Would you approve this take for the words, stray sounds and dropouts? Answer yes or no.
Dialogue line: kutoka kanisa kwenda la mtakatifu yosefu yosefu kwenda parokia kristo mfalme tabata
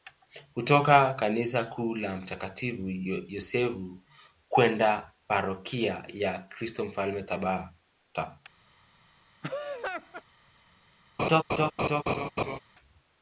no